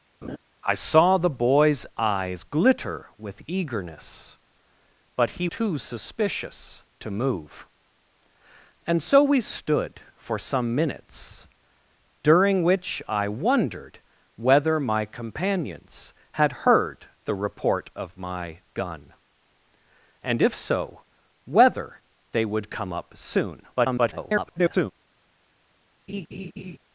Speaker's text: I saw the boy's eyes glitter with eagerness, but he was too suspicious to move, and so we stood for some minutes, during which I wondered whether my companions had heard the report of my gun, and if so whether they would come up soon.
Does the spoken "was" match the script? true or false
false